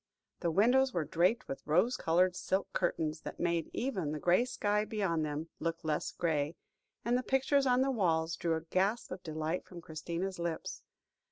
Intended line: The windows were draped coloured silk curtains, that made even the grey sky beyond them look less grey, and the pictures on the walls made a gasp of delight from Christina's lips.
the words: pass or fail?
fail